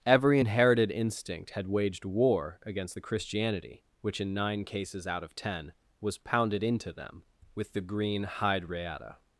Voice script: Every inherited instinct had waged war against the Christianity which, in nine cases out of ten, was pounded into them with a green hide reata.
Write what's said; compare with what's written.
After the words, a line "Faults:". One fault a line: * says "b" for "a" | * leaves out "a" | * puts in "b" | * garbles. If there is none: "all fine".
Every inherited instinct had waged war against the Christianity which, in nine cases out of ten, was pounded into them with the green hide reata.
Faults:
* says "the" for "a"